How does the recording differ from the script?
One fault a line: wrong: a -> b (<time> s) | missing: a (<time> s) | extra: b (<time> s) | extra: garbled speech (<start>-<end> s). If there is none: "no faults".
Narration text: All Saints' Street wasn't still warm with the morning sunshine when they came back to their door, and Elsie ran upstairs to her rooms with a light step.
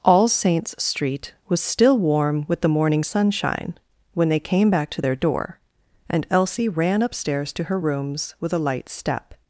wrong: wasn't -> was (1.5 s)